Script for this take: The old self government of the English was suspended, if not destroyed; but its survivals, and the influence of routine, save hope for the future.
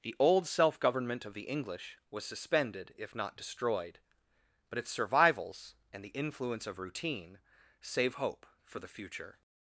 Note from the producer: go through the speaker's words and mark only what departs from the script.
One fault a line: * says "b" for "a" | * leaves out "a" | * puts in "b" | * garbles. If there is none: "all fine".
all fine